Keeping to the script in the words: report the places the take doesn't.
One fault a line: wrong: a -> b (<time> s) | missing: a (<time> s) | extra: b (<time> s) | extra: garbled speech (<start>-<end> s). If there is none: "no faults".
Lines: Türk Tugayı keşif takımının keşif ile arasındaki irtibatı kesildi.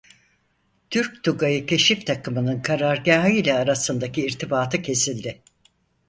wrong: keşif -> karargâhı (2.6 s)